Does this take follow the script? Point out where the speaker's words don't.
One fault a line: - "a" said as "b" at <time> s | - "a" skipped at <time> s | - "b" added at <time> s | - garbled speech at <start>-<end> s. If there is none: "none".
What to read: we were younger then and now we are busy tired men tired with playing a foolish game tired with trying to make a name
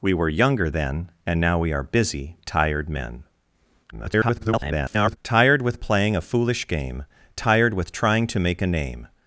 - garbled speech at 3.9-5.2 s